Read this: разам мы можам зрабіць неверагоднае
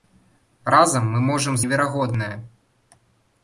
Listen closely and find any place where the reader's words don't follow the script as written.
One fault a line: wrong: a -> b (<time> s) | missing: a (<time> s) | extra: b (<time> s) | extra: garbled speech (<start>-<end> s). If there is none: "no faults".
missing: зрабіць (1.6 s)